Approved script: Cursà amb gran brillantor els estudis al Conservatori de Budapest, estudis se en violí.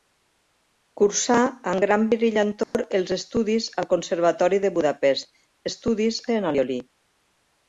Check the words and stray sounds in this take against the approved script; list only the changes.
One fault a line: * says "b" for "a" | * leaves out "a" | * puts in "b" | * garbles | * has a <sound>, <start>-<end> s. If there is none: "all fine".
* has a dropout, 2.6-2.7 s